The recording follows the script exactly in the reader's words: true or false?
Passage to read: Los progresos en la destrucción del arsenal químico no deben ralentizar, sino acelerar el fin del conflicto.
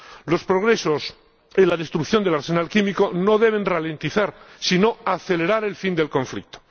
true